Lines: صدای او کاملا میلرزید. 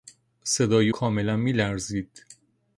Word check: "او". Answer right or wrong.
wrong